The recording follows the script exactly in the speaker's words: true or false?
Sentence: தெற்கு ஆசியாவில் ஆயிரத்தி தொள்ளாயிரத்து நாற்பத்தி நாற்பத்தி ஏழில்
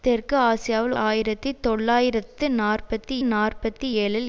true